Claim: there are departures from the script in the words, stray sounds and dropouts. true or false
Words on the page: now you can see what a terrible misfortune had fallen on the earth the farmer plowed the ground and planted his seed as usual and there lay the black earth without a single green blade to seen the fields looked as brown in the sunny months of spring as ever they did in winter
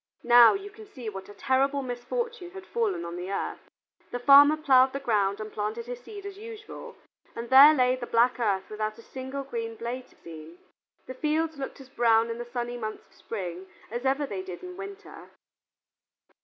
false